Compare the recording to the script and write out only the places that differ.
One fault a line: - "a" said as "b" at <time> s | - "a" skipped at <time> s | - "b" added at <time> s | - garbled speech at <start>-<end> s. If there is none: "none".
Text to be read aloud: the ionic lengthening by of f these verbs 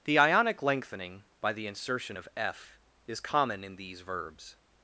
- "the insertion" added at 1.5 s
- "is common in" added at 3.1 s